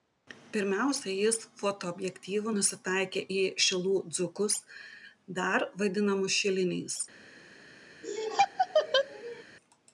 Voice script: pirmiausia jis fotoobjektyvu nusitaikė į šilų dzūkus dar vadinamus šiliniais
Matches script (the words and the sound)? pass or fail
fail